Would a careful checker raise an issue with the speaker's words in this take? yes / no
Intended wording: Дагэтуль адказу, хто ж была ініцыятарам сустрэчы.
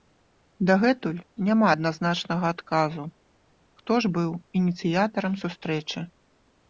yes